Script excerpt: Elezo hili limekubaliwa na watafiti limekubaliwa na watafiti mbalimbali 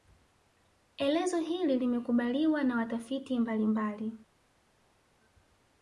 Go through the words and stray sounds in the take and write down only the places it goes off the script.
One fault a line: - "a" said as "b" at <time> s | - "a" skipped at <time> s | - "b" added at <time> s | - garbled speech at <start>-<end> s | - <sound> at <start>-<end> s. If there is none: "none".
- "limekubaliwa na watafiti" skipped at 3.4 s